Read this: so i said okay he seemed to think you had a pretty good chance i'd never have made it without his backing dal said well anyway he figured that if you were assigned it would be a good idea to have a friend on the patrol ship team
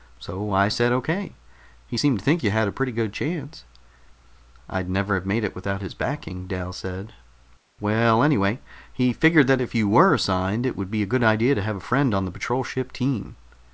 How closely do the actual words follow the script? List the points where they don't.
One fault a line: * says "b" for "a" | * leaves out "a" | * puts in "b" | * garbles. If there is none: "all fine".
all fine